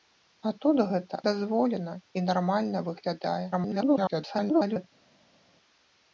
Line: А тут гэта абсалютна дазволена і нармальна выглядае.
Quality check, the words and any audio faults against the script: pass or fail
fail